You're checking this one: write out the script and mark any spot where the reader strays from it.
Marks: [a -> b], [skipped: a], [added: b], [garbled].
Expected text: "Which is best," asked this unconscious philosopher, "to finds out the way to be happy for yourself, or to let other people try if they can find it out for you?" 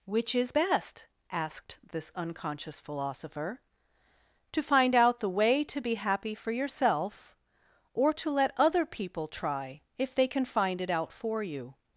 "Which is best," asked this unconscious philosopher, "to [finds -> find] out the way to be happy for yourself, or to let other people try if they can find it out for you?"